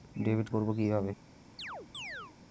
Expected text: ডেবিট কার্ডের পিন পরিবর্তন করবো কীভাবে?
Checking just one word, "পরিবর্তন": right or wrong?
wrong